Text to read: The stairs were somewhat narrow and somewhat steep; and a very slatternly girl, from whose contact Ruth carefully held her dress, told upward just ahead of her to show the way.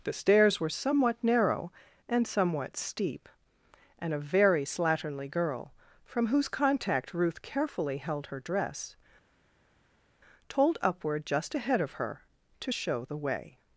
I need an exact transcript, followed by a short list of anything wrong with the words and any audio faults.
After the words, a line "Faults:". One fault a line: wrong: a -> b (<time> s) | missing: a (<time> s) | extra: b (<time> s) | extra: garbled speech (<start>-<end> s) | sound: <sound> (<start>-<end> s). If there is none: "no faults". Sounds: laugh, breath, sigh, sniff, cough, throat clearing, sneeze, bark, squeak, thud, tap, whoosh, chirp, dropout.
The stairs were somewhat narrow and somewhat steep; and a very slatternly girl, from whose contact Ruth carefully held her dress, told upward just ahead of her to show the way.
Faults:
no faults